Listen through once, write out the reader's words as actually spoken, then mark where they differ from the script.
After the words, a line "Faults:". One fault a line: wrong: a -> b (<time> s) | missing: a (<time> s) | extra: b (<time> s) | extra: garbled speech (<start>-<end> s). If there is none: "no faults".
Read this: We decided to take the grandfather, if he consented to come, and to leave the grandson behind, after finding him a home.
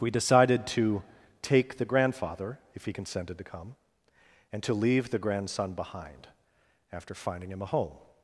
We decided to take the grandfather, if he consented to come, and to leave the grandson behind, after finding him a home.
Faults:
no faults